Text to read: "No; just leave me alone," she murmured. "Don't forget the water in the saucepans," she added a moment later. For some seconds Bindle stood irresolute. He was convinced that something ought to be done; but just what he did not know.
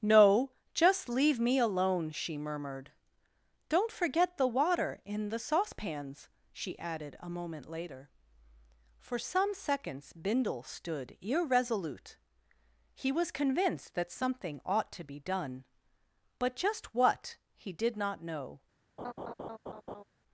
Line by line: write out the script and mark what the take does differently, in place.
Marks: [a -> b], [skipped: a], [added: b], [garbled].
"No; just leave me alone," she murmured. "Don't forget the water in the saucepans," she added a moment later. For some seconds Bindle stood irresolute. He was convinced that something ought to be done; but just what he did not know.